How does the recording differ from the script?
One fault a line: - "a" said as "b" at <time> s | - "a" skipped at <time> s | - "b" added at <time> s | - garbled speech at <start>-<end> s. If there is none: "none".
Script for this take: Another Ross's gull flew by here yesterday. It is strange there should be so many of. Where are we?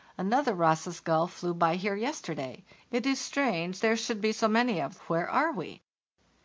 none